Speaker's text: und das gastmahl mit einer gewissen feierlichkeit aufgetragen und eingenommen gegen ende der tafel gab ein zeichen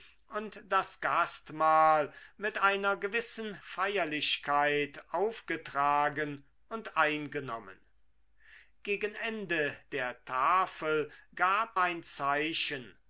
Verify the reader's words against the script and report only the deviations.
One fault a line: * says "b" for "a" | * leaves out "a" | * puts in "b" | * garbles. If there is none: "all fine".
all fine